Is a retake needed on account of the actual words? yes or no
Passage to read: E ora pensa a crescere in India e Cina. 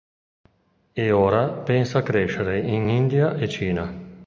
no